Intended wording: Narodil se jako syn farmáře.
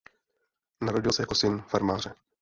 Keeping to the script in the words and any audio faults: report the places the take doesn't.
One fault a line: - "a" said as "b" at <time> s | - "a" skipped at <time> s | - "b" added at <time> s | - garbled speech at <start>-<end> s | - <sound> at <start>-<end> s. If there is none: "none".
none